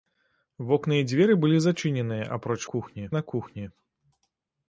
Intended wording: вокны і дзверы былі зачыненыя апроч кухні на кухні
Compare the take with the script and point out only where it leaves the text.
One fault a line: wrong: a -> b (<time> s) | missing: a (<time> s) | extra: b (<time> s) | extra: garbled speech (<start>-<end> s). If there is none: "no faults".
no faults